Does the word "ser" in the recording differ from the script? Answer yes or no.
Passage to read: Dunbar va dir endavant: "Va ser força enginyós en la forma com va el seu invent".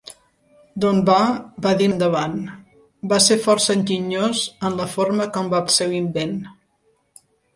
no